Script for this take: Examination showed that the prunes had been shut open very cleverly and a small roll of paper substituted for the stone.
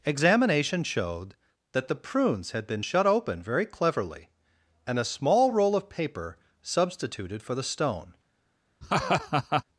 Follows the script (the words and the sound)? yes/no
no